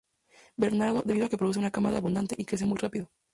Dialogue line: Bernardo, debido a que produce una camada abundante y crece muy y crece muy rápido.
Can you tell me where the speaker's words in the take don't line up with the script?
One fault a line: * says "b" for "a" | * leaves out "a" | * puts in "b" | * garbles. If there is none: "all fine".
* leaves out "y crece muy"